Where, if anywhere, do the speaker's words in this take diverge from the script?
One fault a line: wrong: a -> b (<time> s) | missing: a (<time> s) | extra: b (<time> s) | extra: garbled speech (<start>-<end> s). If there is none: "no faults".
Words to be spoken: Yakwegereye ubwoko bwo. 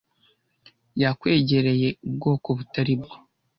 extra: butari (2.6 s)